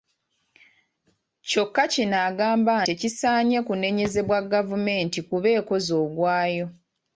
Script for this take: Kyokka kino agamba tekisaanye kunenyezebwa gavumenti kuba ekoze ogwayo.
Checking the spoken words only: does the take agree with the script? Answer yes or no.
yes